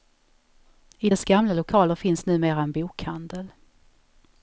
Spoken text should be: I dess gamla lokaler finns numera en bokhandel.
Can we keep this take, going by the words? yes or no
yes